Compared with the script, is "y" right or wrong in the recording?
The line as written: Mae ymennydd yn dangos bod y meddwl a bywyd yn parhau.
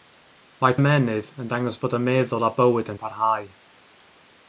right